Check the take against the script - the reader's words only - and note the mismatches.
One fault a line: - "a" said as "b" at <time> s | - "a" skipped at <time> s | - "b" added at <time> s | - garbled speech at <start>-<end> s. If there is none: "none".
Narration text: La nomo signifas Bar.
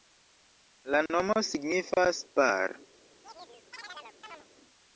none